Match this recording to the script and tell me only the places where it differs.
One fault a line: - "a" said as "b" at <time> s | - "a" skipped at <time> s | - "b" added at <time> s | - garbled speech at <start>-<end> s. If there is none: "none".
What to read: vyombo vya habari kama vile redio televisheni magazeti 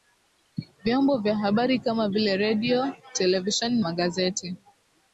none